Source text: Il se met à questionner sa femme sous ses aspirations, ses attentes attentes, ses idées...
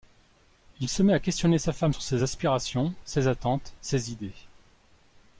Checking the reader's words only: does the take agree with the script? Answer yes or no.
no